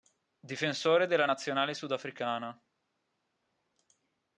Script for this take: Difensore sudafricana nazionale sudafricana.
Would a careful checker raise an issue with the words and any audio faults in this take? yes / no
yes